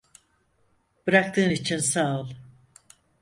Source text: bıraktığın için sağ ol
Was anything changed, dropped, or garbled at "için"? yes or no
no